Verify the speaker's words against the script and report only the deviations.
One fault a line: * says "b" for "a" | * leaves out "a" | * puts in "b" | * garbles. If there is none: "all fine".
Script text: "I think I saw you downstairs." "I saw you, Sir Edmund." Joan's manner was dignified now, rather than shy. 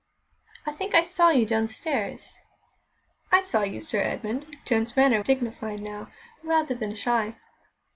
* leaves out "was"